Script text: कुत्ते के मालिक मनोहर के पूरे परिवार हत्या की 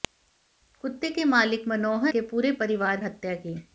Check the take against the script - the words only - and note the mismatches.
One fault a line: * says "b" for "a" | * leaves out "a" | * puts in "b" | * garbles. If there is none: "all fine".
all fine